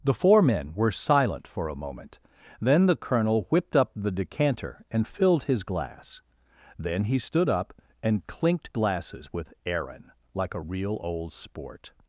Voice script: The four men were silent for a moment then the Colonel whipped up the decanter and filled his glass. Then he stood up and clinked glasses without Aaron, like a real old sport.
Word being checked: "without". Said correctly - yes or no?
no